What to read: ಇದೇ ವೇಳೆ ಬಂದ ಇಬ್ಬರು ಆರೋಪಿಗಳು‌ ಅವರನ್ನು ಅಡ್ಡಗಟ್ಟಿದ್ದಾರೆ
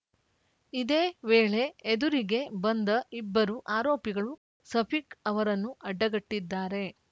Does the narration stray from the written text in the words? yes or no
yes